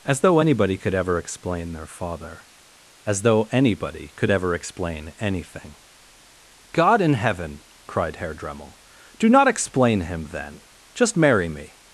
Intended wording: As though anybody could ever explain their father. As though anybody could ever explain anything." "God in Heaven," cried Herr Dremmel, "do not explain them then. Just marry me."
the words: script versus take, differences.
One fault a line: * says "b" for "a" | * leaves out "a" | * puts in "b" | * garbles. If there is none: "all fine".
* says "him" for "them"